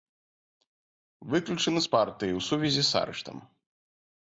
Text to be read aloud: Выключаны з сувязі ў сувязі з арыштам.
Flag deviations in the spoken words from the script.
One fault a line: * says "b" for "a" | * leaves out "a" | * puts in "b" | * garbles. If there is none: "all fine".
* says "партыі" for "сувязі"